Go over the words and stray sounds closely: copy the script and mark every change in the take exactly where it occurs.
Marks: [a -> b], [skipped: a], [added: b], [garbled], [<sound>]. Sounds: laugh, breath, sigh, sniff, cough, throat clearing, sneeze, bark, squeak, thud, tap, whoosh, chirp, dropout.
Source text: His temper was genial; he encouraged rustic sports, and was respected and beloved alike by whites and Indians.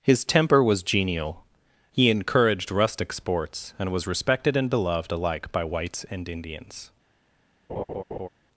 His temper was genial; he encouraged rustic sports, and was respected and beloved alike by whites and Indians. [laugh]